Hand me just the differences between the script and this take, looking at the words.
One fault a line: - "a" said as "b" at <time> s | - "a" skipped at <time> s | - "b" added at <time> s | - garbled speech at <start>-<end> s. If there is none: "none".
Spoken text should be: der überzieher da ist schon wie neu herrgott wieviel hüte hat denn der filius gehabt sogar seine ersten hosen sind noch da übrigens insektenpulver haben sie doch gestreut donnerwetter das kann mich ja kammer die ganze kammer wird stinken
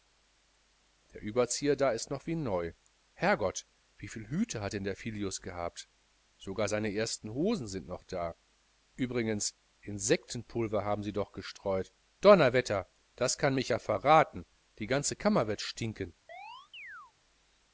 - "schon" said as "noch" at 2.1 s
- "kammer" said as "verraten" at 13.8 s